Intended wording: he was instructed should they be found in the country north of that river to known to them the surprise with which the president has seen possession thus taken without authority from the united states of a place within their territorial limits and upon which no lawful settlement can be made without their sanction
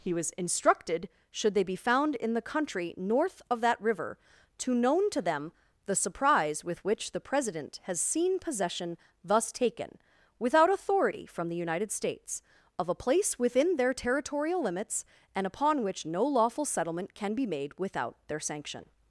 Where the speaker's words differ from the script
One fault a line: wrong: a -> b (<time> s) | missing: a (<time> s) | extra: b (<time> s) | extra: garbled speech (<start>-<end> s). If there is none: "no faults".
no faults